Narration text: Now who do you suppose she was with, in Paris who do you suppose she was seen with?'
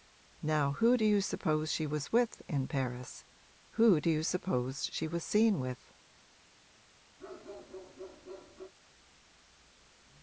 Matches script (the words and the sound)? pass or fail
fail